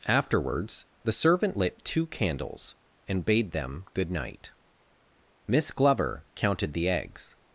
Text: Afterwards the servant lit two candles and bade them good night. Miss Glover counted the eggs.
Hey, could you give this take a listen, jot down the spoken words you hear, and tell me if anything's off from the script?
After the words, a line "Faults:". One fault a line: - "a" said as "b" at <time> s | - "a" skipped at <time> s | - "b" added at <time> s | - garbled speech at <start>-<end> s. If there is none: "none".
Afterwards the servant lit two candles and bade them good night. Miss Glover counted the eggs.
Faults:
none